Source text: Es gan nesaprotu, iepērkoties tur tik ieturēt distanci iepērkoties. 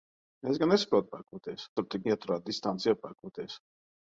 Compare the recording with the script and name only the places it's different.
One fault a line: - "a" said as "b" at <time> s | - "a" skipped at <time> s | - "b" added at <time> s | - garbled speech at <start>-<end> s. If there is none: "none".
none